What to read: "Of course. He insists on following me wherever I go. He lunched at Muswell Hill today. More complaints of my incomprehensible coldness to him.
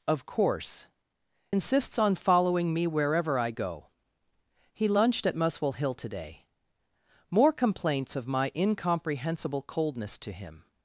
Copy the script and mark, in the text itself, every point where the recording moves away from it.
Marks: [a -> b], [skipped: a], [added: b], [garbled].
"Of course. [skipped: He] insists on following me wherever I go. He lunched at Muswell Hill today. More complaints of my incomprehensible coldness to him.